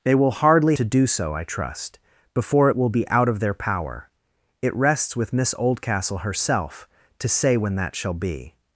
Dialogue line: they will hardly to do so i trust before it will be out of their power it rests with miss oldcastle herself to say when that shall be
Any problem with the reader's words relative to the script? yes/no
no